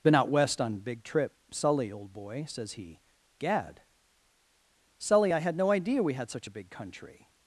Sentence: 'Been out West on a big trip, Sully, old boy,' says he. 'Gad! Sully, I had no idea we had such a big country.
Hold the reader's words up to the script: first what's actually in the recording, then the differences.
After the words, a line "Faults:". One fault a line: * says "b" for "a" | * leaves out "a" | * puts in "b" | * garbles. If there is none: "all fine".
'Been out West on big trip, Sully, old boy,' says he. 'Gad! Sully, I had no idea we had such a big country.
Faults:
* leaves out "a"